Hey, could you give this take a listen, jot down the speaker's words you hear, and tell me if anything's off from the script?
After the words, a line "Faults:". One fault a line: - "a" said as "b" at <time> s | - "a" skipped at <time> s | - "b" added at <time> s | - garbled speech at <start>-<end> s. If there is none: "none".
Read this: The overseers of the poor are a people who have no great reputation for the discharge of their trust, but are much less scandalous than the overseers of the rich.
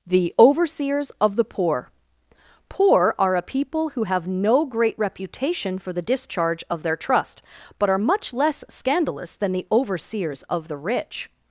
The overseers of the poor poor are a people who have no great reputation for the discharge of their trust, but are much less scandalous than the overseers of the rich.
Faults:
- "poor" added at 2.7 s